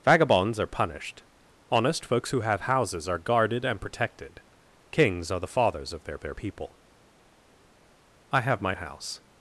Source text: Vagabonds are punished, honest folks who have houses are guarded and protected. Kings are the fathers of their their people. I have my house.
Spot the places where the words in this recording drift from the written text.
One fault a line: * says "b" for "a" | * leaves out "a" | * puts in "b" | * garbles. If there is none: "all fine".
all fine